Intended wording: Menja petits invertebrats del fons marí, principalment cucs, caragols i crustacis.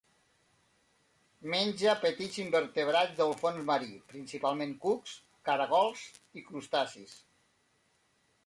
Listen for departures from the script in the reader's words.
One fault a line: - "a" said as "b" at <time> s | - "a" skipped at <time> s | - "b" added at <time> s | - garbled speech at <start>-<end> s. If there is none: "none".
none